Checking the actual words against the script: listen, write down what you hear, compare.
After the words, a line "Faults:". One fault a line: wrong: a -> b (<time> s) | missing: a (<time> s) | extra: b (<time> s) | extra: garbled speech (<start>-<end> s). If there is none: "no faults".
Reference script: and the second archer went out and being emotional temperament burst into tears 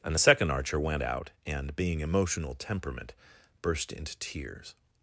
and the second archer went out and being emotional temperament burst into tears
Faults:
no faults